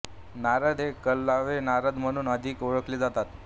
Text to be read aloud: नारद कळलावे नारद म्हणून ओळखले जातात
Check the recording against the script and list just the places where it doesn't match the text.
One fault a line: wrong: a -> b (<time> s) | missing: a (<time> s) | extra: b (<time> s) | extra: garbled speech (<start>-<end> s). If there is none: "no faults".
extra: हे (0.8 s)
extra: अधिक (2.3 s)